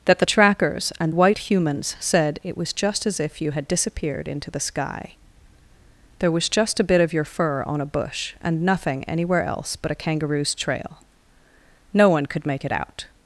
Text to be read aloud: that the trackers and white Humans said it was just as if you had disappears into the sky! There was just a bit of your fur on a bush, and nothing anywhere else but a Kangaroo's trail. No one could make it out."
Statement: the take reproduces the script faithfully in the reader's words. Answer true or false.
false